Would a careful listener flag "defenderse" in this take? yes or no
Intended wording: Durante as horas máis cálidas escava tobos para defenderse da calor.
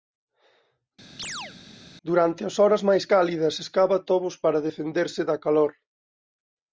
no